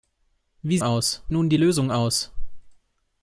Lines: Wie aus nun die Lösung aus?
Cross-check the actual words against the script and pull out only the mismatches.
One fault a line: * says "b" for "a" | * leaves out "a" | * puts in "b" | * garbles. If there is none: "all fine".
all fine